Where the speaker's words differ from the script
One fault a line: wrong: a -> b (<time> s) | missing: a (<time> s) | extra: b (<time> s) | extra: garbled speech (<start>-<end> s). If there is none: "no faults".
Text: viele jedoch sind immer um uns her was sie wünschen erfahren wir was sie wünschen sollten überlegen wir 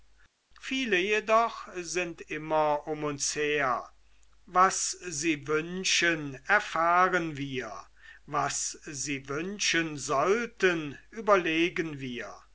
no faults